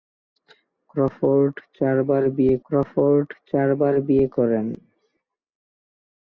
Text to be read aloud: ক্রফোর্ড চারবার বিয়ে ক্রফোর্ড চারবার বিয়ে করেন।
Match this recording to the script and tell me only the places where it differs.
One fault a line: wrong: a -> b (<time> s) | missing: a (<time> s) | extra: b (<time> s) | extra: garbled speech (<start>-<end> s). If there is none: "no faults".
no faults